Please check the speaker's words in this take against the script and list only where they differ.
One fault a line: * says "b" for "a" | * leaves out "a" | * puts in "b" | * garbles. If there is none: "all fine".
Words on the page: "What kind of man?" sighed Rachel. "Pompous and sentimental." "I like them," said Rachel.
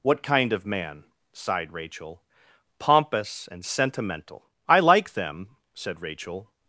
all fine